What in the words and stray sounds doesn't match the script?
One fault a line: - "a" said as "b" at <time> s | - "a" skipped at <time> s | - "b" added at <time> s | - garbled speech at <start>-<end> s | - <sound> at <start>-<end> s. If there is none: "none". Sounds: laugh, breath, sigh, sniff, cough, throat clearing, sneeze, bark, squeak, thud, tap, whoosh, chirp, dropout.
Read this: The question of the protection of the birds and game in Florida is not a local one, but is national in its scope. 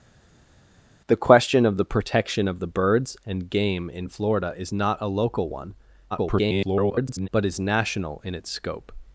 - garbled speech at 6.1-7.3 s